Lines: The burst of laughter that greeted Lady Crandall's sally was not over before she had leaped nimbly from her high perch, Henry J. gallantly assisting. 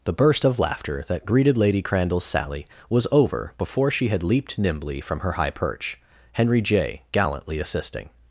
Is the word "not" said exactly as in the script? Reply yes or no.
no